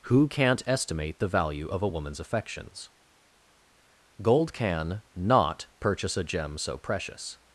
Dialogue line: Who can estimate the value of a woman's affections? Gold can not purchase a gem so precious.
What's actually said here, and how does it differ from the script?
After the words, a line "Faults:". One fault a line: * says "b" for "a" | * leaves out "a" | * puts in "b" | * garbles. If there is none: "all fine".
Who can't estimate the value of a woman's affections? Gold can not purchase a gem so precious.
Faults:
* says "can't" for "can"